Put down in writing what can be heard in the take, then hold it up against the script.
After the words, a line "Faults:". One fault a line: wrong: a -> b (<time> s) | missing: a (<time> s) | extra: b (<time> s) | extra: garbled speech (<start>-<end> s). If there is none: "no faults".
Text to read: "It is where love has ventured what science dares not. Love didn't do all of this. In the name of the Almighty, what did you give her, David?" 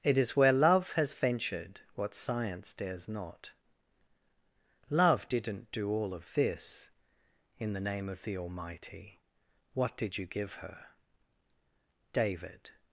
"It is where love has ventured what science dares not. Love didn't do all of this. In the name of the Almighty, what did you give her, David?"
Faults:
no faults